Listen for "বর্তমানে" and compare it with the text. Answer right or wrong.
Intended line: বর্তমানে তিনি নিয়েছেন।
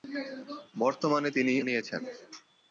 right